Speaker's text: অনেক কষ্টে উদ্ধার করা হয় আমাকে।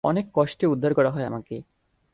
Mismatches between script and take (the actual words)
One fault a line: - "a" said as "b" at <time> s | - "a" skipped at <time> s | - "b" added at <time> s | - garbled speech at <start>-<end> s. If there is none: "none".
none